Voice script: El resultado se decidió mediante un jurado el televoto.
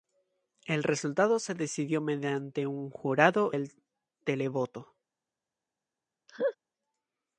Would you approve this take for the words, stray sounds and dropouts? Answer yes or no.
no